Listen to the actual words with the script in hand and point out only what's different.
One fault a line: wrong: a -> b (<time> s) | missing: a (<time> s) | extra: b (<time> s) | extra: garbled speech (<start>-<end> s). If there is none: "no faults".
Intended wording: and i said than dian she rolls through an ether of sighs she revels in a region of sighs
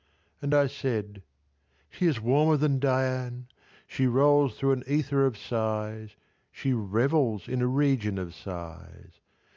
extra: she is warmer (1.9 s)